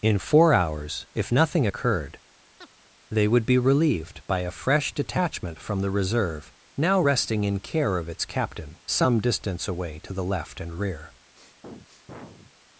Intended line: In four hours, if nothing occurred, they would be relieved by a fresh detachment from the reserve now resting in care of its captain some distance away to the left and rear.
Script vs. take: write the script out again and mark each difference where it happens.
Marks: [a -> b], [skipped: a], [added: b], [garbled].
In four hours, if nothing occurred, they would be relieved by a fresh detachment from the reserve now resting in care of its captain some distance away to the left and rear.